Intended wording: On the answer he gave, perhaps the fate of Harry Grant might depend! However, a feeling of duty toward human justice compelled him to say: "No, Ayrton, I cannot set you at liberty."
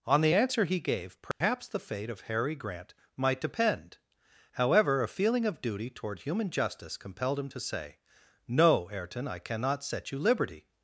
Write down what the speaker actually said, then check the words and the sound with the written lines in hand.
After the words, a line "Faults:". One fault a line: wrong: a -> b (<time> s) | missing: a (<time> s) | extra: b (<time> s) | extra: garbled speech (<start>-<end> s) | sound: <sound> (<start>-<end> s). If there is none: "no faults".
On the answer he gave, perhaps the fate of Harry Grant might depend! However, a feeling of duty toward human justice compelled him to say: "No, Ayrton, I cannot set you liberty."
Faults:
sound: dropout (1.3-1.4 s)
missing: at (10.2 s)